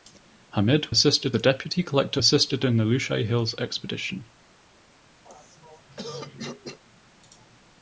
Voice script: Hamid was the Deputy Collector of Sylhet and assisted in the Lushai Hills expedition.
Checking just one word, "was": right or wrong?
wrong